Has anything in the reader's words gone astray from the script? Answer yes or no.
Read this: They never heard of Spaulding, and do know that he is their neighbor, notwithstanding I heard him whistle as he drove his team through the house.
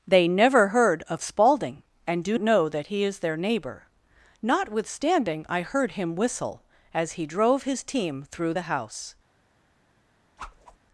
no